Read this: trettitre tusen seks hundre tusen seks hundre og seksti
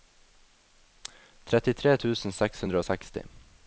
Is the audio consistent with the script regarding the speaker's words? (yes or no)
no